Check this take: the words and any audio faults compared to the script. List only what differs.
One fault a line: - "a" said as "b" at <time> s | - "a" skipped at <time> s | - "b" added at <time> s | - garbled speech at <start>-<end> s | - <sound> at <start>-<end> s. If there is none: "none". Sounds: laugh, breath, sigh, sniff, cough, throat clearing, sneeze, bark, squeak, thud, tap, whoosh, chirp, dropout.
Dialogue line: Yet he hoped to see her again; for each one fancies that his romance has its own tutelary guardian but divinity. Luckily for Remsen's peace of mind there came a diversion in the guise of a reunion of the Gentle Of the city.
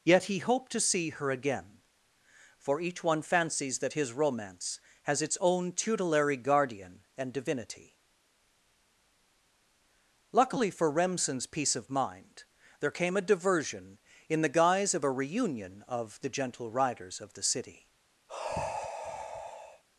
- "but" said as "and" at 7.2 s
- "Riders" added at 16.7 s
- sigh at 18.3-19.8 s